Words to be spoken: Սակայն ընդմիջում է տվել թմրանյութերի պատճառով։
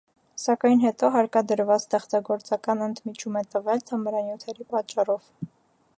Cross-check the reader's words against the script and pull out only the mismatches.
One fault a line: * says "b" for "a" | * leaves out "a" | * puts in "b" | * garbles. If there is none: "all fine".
* puts in "հետո հարկադրված ստեղծագործական"